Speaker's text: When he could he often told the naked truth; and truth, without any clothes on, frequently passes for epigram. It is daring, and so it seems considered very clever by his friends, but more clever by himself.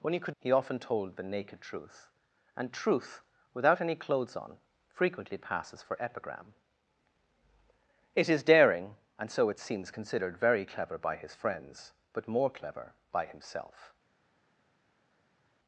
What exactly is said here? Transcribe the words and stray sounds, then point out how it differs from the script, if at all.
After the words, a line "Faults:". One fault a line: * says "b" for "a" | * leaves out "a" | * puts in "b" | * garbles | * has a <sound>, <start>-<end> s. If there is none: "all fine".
When he could he often told the naked truth; and truth, without any clothes on, frequently passes for epigram. It is daring, and so it seems considered very clever by his friends, but more clever by himself.
Faults:
all fine